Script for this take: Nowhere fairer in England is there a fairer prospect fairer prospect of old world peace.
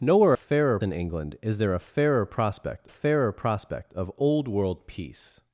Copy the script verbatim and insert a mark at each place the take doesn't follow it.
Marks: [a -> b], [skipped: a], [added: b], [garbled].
Nowhere fairer in England is there a fairer prospect fairer prospect of old world peace.